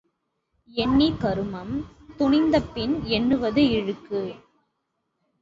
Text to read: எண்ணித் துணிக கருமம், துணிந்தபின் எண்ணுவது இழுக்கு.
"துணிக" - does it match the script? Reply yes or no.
no